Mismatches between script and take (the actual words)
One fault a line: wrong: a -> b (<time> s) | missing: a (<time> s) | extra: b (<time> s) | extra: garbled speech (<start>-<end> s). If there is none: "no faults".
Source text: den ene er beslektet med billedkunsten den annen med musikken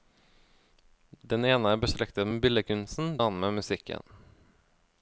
missing: den (3.1 s)